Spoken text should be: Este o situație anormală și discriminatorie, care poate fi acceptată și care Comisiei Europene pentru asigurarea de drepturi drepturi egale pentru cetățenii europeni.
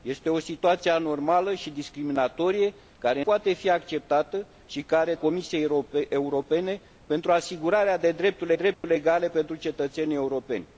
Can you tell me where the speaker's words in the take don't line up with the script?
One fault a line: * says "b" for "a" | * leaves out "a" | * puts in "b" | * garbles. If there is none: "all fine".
all fine